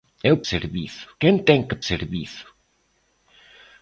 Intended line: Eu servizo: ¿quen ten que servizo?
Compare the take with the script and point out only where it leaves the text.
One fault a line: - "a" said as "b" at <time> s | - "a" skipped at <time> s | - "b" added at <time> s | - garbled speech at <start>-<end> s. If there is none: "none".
none